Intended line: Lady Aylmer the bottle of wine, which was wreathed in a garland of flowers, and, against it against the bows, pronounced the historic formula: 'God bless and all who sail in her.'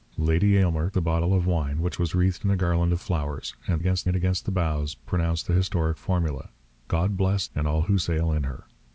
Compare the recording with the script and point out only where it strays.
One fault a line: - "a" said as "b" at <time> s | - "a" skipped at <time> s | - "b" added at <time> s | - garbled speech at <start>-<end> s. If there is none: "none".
none